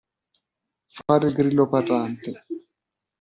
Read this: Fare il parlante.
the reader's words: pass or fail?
fail